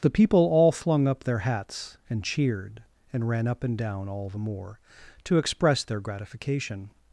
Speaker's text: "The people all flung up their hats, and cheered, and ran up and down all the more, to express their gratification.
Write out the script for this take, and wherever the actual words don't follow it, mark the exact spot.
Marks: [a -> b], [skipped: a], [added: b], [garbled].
"The people all flung up their hats, and cheered, and ran up and down all the more, to express their gratification.